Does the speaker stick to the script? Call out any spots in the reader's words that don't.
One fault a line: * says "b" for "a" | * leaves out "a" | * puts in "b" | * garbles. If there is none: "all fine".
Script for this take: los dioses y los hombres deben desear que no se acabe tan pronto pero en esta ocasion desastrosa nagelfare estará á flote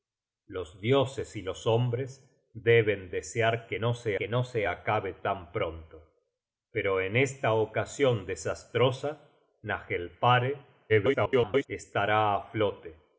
* puts in "que no se"
* garbles